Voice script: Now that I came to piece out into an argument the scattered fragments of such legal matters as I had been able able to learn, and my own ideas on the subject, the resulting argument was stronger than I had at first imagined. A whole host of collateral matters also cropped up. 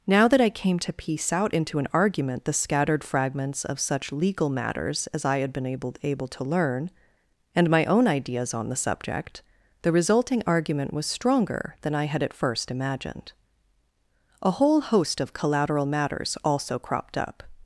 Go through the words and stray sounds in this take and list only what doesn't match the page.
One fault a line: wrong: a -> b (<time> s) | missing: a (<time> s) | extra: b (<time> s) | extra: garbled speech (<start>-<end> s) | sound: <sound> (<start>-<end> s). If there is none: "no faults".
no faults